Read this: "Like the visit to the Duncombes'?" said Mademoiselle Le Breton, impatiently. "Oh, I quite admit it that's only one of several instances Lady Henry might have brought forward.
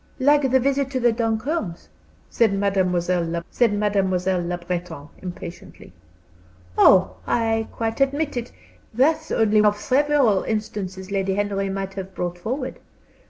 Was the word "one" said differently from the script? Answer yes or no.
yes